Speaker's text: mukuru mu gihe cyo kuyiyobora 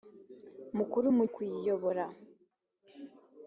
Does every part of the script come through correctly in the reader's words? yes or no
no